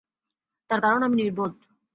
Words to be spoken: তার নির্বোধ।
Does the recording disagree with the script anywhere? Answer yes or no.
yes